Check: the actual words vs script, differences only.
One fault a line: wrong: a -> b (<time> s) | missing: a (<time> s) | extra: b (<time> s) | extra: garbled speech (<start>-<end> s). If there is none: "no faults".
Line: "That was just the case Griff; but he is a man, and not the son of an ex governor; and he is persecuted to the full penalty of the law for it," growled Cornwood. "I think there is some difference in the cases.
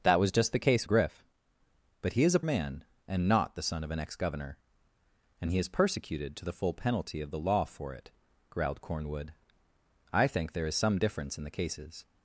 no faults